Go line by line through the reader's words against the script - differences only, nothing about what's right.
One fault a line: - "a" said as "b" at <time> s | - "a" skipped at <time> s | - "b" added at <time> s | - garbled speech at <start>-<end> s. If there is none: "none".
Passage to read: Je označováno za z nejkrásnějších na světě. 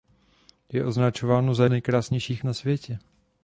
none